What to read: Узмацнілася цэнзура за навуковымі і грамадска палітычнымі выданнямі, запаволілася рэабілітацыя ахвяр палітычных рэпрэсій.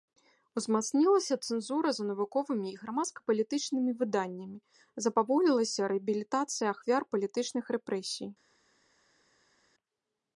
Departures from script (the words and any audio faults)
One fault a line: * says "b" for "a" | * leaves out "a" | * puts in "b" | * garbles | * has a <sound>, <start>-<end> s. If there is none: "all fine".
all fine